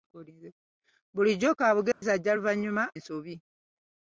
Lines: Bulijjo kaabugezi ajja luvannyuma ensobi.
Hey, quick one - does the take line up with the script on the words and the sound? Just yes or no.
no